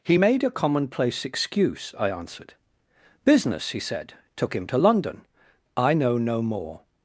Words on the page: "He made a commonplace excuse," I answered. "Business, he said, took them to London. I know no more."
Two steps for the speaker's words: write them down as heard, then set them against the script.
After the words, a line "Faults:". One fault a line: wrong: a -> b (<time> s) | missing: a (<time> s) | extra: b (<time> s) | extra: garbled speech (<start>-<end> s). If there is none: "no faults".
"He made a commonplace excuse," I answered. "Business, he said, took him to London. I know no more."
Faults:
wrong: them -> him (4.5 s)